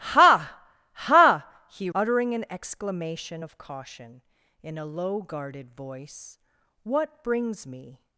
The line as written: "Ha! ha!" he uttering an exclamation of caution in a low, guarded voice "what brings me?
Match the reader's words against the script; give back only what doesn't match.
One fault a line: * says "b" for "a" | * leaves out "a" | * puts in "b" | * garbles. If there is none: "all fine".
all fine